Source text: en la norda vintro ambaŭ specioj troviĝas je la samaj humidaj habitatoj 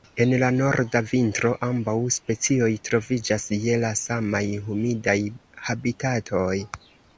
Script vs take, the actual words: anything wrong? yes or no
no